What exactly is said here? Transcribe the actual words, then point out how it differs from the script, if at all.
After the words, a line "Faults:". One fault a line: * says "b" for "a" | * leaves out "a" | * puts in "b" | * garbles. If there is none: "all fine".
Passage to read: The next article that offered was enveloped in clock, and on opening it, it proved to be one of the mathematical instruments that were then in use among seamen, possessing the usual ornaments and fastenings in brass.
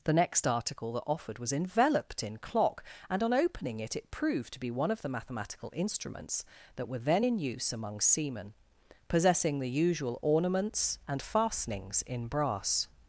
The next article that offered was enveloped in clock, and on opening it, it proved to be one of the mathematical instruments that were then in use among seamen, possessing the usual ornaments and fastenings in brass.
Faults:
all fine